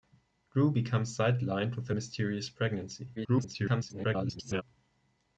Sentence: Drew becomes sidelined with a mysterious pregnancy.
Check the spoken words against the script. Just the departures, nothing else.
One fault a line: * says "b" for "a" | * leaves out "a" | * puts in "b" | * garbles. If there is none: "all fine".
* garbles